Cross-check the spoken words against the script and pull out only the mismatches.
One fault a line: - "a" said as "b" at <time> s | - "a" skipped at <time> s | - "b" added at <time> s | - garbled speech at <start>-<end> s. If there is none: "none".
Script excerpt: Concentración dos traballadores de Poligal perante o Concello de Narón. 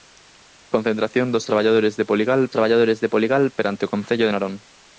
- "traballadores de Poligal" added at 2.5 s